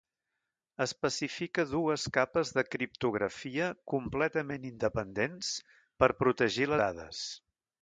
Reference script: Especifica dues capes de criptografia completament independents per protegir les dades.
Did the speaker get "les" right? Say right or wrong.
wrong